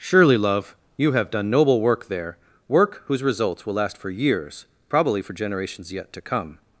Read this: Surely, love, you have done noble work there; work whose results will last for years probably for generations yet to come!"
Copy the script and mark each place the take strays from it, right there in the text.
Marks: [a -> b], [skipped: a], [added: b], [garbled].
Surely, love, you have done noble work there; work whose results will last for years probably for generations yet to come!"